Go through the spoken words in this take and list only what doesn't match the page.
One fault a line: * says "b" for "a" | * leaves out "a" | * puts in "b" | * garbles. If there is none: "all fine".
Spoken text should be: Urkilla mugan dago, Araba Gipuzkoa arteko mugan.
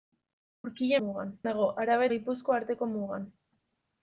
all fine